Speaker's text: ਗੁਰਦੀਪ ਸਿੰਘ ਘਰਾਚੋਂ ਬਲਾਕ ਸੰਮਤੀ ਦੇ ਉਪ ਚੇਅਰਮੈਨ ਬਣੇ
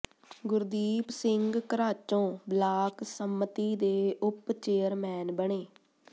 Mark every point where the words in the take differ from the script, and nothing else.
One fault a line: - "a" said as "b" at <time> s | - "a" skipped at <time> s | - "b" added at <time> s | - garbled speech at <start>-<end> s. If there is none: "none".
none